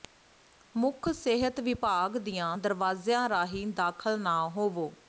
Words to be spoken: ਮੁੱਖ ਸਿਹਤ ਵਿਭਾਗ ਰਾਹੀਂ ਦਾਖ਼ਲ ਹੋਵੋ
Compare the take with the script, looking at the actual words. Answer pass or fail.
fail